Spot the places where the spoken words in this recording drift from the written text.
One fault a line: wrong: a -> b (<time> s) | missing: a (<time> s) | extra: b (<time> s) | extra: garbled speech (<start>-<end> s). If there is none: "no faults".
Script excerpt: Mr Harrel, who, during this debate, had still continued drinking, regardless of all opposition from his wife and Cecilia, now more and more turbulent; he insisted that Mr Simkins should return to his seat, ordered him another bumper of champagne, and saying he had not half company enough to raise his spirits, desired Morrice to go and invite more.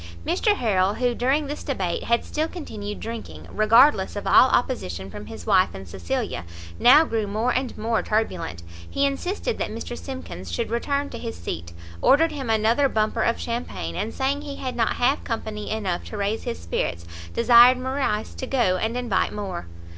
extra: grew (7.0 s)